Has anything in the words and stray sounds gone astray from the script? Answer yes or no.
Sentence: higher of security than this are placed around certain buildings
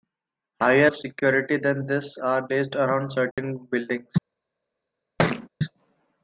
yes